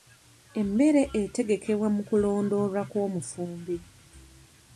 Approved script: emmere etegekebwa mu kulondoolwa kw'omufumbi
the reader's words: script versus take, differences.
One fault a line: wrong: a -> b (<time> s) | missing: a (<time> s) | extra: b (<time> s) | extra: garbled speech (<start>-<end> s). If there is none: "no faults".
no faults